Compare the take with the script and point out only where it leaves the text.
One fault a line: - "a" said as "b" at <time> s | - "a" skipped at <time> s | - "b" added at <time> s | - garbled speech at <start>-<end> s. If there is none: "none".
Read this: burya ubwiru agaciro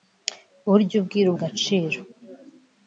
none